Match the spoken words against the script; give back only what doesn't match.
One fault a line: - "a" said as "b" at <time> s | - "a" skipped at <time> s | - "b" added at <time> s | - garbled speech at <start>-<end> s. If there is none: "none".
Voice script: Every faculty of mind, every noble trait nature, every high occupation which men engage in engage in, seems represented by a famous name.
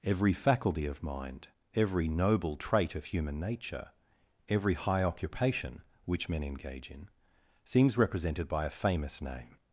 - "of human" added at 3.0 s
- "engage in" skipped at 7.1 s